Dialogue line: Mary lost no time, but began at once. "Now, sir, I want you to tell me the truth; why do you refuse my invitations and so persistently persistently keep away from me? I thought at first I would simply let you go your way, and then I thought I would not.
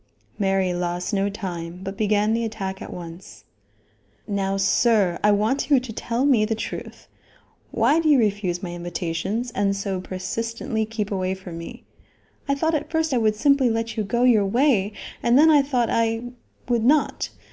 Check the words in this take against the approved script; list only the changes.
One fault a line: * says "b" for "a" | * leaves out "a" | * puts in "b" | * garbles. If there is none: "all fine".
* puts in "the attack"
* leaves out "persistently"